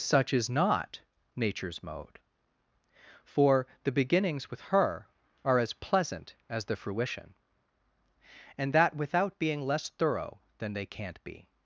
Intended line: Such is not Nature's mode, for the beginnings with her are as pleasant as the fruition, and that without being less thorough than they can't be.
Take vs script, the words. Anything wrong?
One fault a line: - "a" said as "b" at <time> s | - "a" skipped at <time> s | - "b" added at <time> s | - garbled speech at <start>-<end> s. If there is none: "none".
none